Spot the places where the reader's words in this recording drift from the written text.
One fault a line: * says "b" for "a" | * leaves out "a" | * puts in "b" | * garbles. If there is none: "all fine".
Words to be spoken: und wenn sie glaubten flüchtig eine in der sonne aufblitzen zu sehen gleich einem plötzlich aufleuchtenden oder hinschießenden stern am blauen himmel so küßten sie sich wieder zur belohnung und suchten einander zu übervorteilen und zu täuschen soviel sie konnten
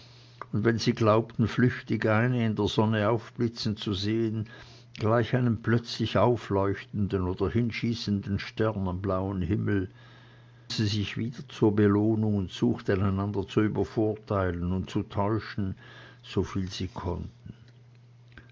* leaves out "so küßten"